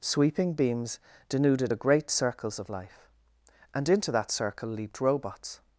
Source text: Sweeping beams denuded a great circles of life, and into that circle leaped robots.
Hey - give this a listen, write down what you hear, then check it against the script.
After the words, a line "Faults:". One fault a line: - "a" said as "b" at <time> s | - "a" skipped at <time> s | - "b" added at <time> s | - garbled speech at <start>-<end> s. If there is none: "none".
Sweeping beams denuded a great circles of life, and into that circle leaped robots.
Faults:
none